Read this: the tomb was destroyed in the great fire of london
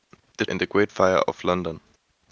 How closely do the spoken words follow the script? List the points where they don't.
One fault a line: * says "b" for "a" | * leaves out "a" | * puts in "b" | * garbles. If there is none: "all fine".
* leaves out "tomb was destroyed"